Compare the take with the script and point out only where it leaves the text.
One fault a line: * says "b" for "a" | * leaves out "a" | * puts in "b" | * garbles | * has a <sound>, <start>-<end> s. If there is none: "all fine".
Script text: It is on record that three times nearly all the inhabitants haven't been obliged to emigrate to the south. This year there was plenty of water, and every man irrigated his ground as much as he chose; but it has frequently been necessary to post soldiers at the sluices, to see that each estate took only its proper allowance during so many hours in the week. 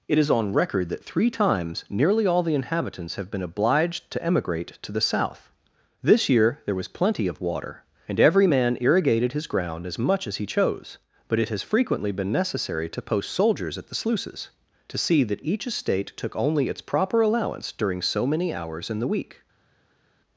* says "have" for "haven't"